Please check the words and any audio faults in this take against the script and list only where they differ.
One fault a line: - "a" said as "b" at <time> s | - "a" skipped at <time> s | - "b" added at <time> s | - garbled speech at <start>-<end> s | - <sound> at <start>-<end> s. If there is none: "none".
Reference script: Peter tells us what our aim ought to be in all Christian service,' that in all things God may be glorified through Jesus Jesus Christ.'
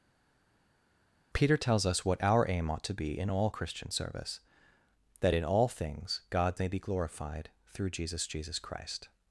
none